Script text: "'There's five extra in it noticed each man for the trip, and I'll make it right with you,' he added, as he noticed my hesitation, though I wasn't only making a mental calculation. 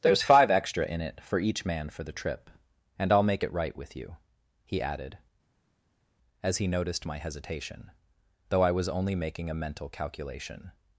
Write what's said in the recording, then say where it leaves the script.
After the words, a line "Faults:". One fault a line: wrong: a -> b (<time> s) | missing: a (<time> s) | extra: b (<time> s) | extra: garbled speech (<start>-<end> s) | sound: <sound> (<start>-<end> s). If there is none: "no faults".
"'There's five extra in it for each man for the trip, and I'll make it right with you,' he added, as he noticed my hesitation, though I was only making a mental calculation.
Faults:
wrong: noticed -> for (1.2 s)
wrong: wasn't -> was (8.7 s)